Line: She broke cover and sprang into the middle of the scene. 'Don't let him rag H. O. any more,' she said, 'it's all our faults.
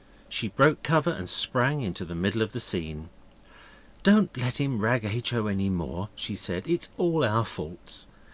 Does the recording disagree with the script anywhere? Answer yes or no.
no